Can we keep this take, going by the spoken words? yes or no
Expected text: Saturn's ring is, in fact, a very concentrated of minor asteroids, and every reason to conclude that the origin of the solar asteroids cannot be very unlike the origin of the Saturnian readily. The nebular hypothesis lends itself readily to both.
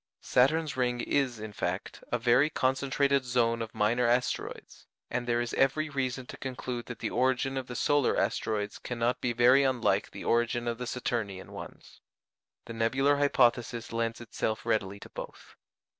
no